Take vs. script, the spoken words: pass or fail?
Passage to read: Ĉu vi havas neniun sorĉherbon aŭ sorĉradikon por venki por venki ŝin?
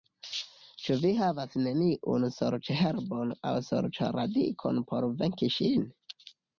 fail